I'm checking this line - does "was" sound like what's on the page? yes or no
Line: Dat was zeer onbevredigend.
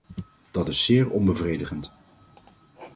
no